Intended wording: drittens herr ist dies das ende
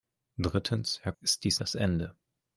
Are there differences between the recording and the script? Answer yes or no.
no